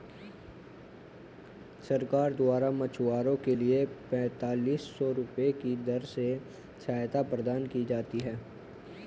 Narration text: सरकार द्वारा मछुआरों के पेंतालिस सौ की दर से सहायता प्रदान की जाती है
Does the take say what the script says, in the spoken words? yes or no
no